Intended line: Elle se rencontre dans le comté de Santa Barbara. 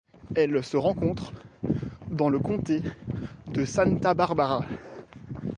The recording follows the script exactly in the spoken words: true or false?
true